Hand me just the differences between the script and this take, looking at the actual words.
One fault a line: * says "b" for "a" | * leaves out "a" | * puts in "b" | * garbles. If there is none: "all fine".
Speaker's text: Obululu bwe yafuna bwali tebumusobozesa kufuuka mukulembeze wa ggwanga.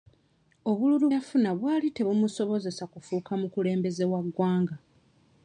* leaves out "bwe"